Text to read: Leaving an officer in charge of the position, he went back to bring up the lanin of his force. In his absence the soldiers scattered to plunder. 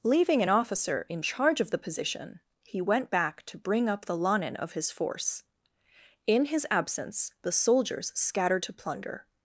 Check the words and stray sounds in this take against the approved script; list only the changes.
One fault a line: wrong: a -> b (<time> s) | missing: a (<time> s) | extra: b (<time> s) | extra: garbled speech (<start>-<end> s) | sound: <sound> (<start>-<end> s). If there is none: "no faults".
no faults